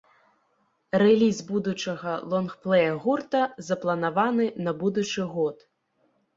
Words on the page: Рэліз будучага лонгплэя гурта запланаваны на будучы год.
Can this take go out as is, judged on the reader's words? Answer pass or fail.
pass